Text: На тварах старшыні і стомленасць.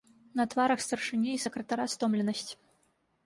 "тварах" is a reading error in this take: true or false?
false